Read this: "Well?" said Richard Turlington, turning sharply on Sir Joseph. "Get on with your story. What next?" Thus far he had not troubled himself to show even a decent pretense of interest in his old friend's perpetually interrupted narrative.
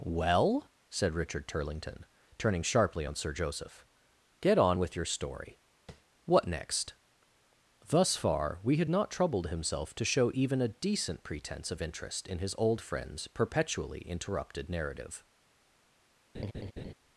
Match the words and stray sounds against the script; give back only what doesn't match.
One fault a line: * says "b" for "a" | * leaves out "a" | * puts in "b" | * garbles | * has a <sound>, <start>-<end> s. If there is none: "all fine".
* has a tap, 5.9-6.0 s
* says "we" for "he"
* has a laugh, 16.3-16.9 s